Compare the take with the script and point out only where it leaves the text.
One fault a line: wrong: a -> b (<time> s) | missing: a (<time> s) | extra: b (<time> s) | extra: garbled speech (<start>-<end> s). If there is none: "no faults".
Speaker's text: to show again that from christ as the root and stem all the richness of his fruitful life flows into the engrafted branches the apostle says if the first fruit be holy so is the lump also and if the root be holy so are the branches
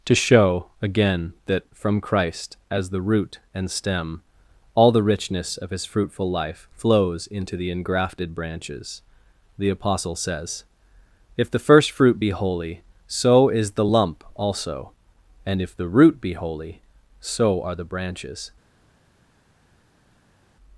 no faults